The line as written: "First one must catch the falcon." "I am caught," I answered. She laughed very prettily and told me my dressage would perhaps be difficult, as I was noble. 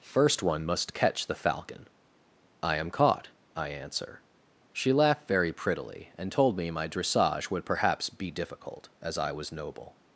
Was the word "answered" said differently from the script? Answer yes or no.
yes